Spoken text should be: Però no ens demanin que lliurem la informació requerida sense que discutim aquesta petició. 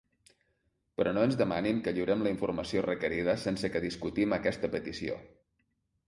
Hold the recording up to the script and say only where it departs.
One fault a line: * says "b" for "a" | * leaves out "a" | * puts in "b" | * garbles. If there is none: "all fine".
all fine